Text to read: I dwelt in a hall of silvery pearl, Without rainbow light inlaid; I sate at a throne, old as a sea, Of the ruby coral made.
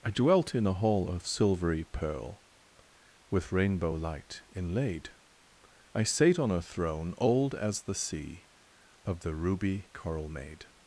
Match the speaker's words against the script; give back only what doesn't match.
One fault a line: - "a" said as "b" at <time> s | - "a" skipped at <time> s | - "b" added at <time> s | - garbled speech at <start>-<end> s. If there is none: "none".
- "Without" said as "With" at 3.3 s
- "at" said as "on" at 6.4 s
- "a" said as "the" at 7.8 s